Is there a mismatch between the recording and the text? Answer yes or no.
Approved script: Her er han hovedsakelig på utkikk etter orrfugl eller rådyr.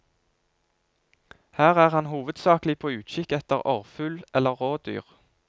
no